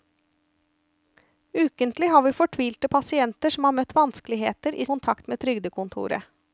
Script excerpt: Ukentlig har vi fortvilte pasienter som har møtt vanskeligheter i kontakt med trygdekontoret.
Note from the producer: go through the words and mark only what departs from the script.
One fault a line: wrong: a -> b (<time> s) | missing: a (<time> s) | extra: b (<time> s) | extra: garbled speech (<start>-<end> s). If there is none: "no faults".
no faults